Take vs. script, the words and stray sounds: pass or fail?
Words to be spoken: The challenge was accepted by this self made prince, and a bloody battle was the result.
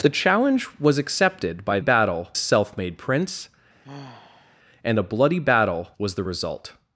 fail